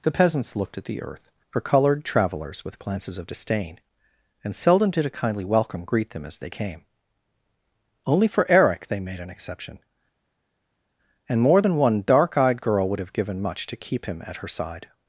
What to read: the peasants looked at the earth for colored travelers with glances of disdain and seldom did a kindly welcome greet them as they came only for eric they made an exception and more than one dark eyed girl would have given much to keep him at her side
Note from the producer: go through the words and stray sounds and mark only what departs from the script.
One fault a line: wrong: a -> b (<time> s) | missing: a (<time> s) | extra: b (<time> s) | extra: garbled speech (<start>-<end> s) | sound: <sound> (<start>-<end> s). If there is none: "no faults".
no faults